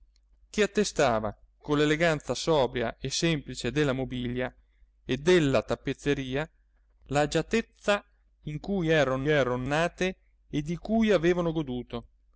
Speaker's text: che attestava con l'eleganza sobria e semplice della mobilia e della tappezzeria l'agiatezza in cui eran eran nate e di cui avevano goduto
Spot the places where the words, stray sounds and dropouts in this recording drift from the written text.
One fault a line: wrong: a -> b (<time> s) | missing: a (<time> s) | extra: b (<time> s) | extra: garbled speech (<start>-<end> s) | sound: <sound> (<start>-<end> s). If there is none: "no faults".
no faults